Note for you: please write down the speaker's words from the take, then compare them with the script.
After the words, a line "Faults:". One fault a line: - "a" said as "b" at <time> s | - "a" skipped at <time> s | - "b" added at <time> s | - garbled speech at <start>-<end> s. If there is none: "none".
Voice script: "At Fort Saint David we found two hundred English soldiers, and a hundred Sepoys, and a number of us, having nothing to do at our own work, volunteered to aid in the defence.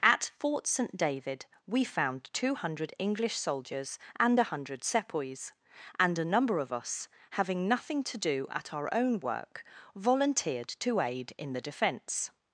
"At Fort Saint David we found two hundred English soldiers, and a hundred Sepoys, and a number of us, having nothing to do at our own work, volunteered to aid in the defence.
Faults:
none